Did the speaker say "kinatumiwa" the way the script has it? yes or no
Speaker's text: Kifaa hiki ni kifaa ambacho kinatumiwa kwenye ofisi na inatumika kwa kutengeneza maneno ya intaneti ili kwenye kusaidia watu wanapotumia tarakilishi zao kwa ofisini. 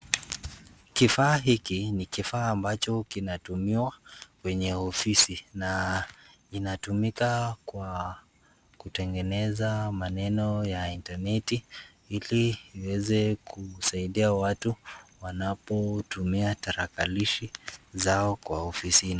yes